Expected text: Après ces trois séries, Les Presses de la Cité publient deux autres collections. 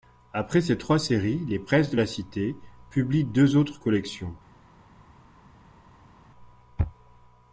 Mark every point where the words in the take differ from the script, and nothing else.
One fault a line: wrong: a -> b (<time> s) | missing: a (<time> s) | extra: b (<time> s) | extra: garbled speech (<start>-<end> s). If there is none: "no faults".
no faults